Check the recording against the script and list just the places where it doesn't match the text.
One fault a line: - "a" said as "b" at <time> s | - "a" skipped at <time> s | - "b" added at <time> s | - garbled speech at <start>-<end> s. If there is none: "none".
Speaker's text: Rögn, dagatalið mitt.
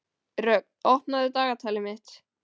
- "opnaðu" added at 0.9 s